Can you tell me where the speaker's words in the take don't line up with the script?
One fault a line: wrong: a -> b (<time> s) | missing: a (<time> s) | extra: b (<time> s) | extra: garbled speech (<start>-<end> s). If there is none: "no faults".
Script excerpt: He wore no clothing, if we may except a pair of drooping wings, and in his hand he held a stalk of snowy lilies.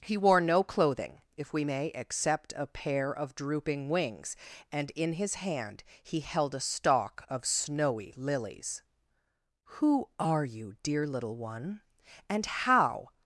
extra: Who are you dear little one and how (9.8 s)